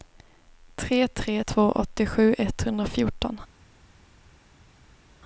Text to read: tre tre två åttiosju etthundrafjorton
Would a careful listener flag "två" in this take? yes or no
no